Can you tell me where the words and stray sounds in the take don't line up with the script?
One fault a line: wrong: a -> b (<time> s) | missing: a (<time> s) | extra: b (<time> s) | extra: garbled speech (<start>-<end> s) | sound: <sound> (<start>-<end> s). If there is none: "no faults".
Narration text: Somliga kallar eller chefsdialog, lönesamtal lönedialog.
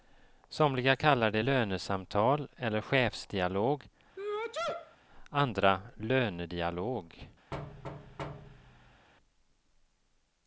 extra: det lönesamtal (1.3 s)
sound: sneeze (4.2-5.0 s)
wrong: lönesamtal -> andra (5.3 s)
sound: thud (7.5-9.1 s)